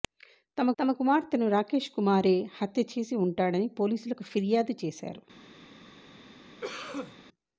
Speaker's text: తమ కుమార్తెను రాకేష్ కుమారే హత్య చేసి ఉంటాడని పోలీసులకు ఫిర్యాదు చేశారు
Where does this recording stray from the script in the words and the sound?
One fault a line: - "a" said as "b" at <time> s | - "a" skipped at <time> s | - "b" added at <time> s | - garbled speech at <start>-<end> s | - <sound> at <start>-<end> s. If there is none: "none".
- "తమ" added at 0.8 s
- cough at 6.6-7.2 s